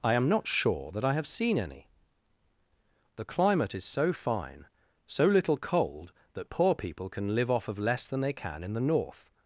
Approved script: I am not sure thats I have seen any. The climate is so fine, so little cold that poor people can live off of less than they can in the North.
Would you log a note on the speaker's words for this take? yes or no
yes